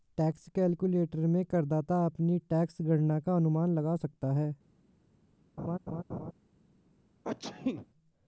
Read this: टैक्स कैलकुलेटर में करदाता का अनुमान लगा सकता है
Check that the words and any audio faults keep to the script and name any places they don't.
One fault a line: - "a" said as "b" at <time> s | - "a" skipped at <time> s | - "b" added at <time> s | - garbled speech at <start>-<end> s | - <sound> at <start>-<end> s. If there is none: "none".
- "अपनी टैक्स गणना" added at 2.0 s
- laugh at 5.6-6.3 s
- sneeze at 7.2-7.9 s